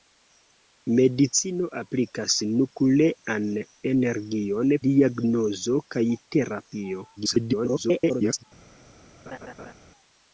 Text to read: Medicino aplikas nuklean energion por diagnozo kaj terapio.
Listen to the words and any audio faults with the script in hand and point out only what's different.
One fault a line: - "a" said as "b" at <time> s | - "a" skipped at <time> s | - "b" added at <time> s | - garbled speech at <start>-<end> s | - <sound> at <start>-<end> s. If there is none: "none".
- "por" skipped at 4.8 s
- garbled speech at 7.2-8.4 s
- laugh at 9.3-9.7 s